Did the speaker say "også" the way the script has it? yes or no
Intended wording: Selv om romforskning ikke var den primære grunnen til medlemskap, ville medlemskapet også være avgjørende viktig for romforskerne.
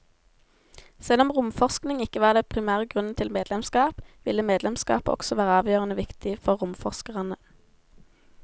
yes